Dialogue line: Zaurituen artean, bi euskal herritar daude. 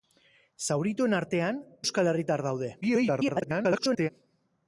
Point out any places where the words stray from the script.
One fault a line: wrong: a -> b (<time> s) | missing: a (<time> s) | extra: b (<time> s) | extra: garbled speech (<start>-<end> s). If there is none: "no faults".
missing: bi (1.6 s)
extra: garbled speech (2.8-4.1 s)